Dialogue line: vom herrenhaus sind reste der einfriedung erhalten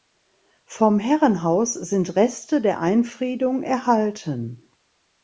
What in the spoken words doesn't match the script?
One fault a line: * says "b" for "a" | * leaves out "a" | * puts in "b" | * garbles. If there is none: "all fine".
all fine